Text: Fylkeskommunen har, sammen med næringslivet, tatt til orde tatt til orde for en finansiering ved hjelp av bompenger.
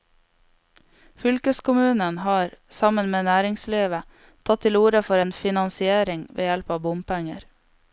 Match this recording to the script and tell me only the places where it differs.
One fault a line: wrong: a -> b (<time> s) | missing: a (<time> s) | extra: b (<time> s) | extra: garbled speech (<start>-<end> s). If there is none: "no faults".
missing: tatt til orde (5.0 s)